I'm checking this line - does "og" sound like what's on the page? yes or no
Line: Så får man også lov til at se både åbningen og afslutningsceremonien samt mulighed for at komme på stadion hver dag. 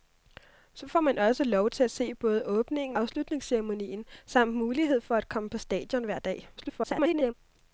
no